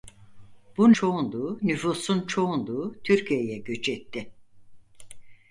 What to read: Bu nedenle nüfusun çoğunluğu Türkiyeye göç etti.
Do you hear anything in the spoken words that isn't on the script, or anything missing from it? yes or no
yes